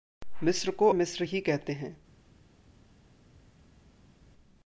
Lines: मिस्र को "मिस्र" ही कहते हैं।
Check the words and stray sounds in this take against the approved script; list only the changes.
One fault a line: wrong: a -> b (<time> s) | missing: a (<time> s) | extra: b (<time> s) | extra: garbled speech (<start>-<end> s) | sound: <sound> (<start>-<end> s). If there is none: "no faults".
no faults